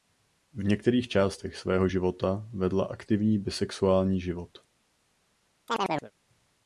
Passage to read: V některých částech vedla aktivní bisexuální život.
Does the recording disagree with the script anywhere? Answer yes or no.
yes